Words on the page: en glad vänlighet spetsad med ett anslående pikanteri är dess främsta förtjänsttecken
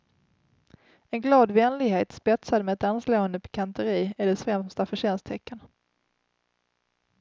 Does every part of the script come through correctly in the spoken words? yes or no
yes